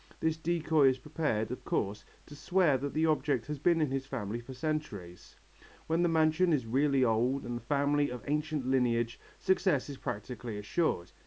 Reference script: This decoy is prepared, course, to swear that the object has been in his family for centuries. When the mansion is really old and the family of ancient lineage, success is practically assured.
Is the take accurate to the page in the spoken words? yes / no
no